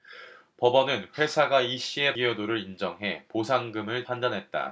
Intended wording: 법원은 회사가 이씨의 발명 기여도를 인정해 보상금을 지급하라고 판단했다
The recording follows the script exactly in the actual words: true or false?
false